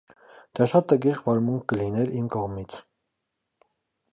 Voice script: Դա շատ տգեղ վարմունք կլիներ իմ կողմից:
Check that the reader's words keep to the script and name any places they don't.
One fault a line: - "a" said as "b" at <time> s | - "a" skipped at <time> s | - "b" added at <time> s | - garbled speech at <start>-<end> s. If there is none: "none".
none